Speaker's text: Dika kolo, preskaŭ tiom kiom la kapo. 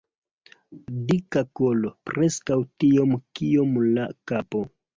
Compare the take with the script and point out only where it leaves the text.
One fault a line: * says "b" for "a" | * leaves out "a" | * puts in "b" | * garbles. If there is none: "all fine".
all fine